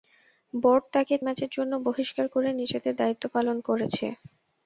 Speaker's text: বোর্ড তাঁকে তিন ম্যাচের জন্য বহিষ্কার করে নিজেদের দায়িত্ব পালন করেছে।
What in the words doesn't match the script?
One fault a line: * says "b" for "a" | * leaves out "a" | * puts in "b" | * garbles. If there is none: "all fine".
* leaves out "তিন"